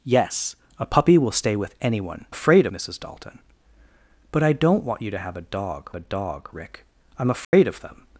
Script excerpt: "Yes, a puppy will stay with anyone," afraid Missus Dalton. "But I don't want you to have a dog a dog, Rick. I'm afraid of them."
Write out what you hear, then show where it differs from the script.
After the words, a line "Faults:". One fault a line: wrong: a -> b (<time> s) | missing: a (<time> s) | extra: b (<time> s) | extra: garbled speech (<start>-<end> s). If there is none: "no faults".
"Yes, a puppy will stay with anyone," afraid Missus Dalton. "But I don't want you to have a dog a dog, Rick. I'm afraid of them."
Faults:
no faults